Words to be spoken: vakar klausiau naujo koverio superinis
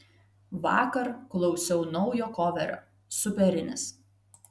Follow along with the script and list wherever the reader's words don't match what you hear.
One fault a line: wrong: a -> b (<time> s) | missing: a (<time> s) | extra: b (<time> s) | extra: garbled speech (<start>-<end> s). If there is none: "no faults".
no faults